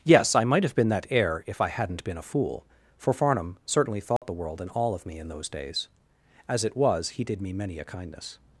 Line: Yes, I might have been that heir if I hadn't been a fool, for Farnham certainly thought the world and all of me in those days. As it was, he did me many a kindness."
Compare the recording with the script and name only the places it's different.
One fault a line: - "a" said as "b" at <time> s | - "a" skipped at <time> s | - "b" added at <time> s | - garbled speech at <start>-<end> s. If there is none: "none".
none